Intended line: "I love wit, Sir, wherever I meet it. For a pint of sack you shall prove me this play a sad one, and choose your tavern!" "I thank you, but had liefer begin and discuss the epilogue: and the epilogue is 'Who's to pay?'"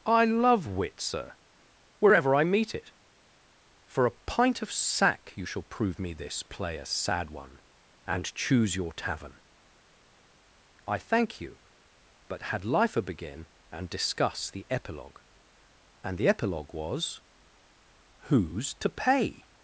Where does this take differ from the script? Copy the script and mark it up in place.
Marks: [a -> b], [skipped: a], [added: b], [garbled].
"I love wit, Sir, wherever I meet it. For a pint of sack you shall prove me this play a sad one, and choose your tavern!" "I thank you, but had liefer begin and discuss the epilogue: and the epilogue [is -> was] 'Who's to pay?'"